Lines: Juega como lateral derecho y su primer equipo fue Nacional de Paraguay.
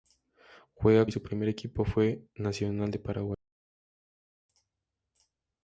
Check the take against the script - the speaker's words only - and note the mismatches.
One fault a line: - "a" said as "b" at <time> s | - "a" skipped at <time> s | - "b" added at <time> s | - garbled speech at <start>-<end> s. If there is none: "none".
- "como lateral derecho" skipped at 1.1 s